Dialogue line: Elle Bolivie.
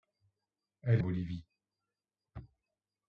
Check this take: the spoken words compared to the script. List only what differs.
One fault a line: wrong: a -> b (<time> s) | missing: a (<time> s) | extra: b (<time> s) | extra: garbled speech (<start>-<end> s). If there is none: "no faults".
no faults